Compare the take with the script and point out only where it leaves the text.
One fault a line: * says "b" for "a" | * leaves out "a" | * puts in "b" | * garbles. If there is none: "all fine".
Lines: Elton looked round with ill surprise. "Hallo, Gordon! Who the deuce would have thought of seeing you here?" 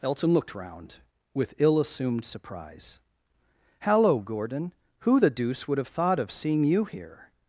* puts in "assumed"